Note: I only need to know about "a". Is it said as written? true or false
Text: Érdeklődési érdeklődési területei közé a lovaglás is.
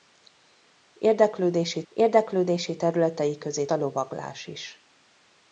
true